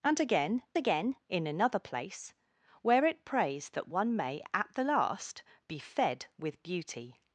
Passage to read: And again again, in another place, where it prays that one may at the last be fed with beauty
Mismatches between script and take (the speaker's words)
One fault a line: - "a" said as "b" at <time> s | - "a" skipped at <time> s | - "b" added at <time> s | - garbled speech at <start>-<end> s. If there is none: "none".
none